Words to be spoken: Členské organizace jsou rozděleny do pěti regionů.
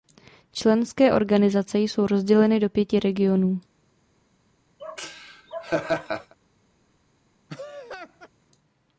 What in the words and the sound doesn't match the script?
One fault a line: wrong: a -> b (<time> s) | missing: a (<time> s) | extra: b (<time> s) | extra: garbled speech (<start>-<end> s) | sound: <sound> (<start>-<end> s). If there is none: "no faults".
sound: laugh (4.8-6.3 s)
sound: laugh (7.5-8.3 s)